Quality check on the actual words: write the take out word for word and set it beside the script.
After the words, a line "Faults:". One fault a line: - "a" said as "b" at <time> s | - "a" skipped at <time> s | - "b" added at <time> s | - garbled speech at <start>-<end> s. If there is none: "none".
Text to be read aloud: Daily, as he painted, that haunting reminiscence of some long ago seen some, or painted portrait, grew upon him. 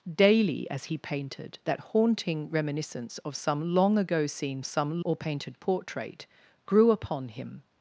Daily, as he painted, that haunting reminiscence of some long ago seen some, or painted portrait, grew upon him.
Faults:
none